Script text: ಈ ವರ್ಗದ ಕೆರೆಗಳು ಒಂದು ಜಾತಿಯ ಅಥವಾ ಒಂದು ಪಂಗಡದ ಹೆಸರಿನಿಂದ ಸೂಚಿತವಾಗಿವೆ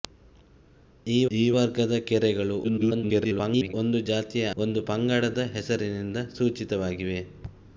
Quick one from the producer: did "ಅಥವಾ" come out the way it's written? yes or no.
no